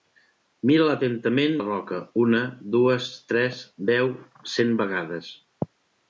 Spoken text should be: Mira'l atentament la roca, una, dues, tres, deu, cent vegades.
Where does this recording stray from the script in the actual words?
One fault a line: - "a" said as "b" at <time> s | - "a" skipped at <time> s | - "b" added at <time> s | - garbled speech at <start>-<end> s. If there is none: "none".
none